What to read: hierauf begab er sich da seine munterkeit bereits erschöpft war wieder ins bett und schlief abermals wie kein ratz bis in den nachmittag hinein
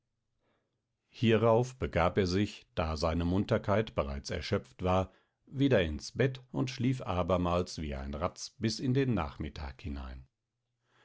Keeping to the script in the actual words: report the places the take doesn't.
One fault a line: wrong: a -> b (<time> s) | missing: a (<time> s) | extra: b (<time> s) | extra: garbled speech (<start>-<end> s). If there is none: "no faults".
wrong: kein -> ein (7.9 s)